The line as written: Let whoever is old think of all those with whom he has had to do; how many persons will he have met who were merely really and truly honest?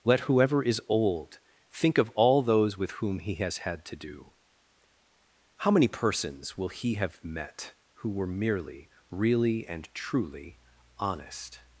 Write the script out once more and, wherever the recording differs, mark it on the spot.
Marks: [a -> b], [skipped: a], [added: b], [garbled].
Let whoever is old think of all those with whom he has had to do; how many persons will he have met who were merely really and truly honest?